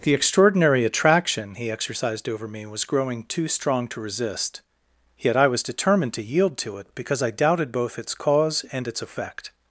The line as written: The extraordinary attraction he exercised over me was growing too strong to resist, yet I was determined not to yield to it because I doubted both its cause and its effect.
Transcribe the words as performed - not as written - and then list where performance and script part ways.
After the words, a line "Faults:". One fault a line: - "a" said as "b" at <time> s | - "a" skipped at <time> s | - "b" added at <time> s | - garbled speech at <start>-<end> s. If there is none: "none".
The extraordinary attraction he exercised over me was growing too strong to resist, yet I was determined to yield to it because I doubted both its cause and its effect.
Faults:
- "not" skipped at 6.2 s